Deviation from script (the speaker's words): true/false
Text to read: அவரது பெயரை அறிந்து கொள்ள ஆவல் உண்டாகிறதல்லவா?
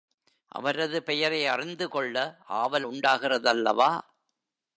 false